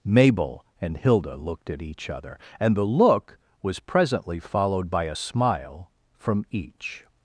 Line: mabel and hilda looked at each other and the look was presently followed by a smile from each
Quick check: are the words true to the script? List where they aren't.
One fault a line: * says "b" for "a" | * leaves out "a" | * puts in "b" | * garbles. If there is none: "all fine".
all fine